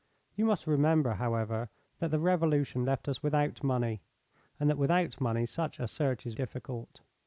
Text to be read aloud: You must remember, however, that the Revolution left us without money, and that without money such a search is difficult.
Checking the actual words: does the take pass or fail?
pass